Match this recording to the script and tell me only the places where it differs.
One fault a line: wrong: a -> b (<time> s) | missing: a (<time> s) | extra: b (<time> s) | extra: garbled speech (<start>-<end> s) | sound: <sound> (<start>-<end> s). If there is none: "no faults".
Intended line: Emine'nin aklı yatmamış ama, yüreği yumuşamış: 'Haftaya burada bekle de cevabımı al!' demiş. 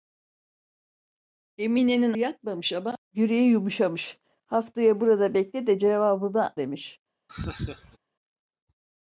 missing: aklı (2.1 s)
missing: al (6.5 s)
sound: laugh (7.3-8.0 s)